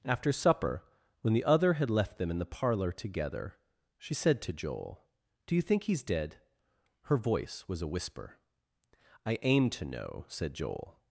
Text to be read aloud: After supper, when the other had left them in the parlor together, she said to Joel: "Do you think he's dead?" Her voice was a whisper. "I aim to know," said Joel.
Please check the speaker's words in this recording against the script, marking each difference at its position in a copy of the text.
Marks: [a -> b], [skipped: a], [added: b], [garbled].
After supper, when the other had left them in the parlor together, she said to Joel: "Do you think he's dead?" Her voice was a whisper. "I aim to know," said Joel.